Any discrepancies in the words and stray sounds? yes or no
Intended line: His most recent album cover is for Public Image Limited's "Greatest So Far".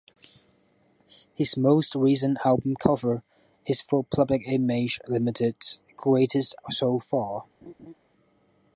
yes